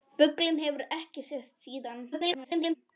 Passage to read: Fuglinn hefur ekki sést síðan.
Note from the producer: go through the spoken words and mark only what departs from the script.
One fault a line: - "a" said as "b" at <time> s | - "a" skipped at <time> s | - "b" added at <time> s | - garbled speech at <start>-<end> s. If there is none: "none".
- garbled speech at 2.1-2.8 s